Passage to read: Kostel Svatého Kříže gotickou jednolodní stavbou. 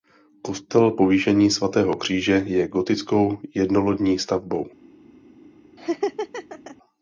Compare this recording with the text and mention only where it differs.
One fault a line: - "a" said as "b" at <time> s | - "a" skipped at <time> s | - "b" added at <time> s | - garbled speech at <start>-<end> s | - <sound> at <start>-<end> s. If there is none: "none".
- "Povýšení" added at 0.9 s
- "je" added at 2.5 s
- laugh at 5.8-6.8 s